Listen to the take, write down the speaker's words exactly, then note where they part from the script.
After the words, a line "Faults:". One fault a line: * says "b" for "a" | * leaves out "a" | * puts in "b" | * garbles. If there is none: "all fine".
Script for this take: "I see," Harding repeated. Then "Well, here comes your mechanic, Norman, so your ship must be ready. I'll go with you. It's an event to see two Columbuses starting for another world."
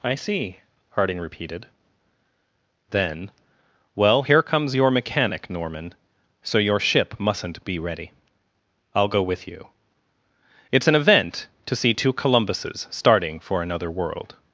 "I see," Harding repeated. Then "Well, here comes your mechanic, Norman, so your ship mustn't be ready. I'll go with you. It's an event to see two Columbuses starting for another world."
Faults:
* says "mustn't" for "must"